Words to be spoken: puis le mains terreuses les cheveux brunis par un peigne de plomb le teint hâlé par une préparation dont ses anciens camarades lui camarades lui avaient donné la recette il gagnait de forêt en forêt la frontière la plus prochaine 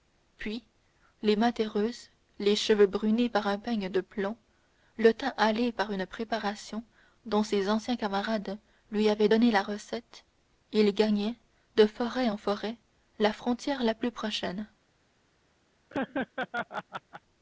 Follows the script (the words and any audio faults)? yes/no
no